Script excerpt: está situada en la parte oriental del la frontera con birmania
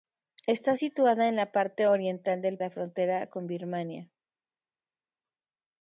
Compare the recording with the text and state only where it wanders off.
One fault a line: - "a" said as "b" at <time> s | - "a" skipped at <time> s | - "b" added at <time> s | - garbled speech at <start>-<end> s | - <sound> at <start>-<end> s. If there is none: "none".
none